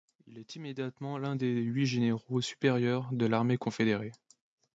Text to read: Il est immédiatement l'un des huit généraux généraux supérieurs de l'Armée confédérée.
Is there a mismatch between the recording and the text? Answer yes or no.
yes